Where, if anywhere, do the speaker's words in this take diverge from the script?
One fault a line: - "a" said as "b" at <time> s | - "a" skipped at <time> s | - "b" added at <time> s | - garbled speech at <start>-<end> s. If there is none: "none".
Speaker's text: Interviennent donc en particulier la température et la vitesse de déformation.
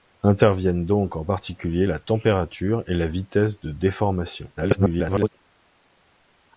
- garbled speech at 4.6-5.3 s